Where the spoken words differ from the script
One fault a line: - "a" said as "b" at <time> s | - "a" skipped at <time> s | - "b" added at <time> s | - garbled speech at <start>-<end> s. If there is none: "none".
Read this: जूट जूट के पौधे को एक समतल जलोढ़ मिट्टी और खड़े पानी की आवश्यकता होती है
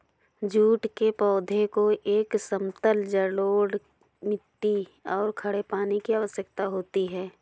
- "जूट" skipped at 0.9 s